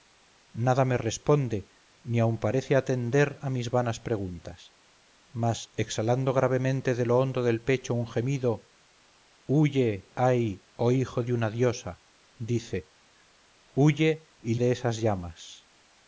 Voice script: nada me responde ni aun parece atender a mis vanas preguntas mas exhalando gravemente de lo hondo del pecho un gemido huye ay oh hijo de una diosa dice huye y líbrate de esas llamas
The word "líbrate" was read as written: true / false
false